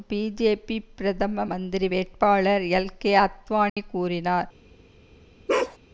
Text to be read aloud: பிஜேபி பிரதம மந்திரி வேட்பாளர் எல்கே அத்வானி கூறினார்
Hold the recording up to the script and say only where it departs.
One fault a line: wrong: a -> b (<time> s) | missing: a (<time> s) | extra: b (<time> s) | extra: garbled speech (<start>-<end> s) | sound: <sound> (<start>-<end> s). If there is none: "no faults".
sound: dropout (3.7-3.8 s)
sound: bark (5.5-5.8 s)